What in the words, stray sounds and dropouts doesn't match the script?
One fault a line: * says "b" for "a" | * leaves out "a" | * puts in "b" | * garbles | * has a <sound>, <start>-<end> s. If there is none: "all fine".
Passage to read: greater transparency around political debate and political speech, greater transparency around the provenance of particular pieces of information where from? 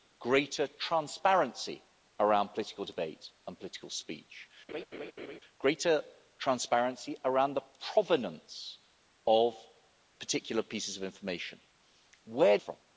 * has a laugh, 4.7-5.4 s